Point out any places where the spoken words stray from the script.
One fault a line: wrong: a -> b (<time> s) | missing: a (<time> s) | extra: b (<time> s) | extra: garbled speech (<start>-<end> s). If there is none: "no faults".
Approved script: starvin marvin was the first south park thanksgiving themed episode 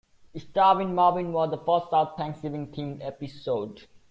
missing: park (2.2 s)